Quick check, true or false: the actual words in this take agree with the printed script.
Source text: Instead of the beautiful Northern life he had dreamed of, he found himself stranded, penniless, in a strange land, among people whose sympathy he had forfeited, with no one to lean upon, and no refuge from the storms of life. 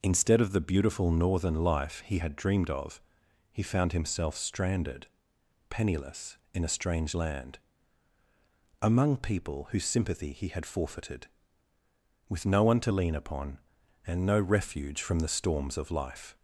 true